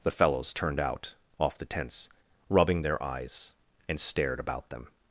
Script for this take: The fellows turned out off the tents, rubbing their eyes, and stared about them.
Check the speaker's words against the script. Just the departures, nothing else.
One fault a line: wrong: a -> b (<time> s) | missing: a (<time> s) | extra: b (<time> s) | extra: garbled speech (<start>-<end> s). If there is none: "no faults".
no faults